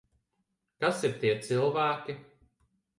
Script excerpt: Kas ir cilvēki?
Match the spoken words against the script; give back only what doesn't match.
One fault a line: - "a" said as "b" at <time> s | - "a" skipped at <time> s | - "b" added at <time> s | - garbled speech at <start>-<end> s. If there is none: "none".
- "tie" added at 1.2 s